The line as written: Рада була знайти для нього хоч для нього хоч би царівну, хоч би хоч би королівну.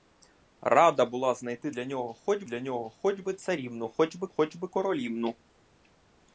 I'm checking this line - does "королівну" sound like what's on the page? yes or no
yes